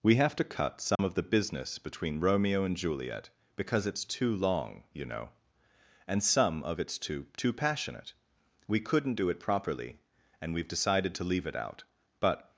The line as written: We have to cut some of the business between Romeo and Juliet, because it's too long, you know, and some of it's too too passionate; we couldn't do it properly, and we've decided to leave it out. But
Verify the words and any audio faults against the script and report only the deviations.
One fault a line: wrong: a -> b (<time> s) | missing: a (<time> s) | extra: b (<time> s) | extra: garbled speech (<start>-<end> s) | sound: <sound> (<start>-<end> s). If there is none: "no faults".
sound: dropout (1.0-1.0 s)